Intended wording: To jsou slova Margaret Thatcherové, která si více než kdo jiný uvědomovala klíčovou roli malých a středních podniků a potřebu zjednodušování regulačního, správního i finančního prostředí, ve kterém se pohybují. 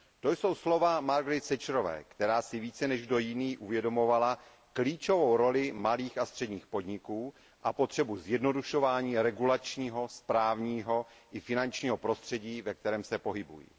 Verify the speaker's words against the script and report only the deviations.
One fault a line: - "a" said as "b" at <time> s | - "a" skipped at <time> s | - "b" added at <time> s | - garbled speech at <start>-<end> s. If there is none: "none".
none